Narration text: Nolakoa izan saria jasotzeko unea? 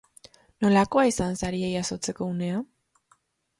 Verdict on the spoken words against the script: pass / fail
pass